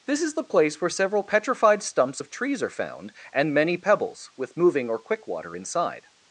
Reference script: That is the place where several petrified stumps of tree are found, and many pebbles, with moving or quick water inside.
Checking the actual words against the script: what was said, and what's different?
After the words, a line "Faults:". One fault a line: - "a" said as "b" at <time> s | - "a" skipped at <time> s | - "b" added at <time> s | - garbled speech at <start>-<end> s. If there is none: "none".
This is the place where several petrified stumps of trees are found, and many pebbles, with moving or quick water inside.
Faults:
- "That" said as "This" at 0.1 s
- "tree" said as "trees" at 2.3 s